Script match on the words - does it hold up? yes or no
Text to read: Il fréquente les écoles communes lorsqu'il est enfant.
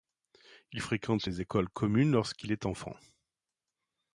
yes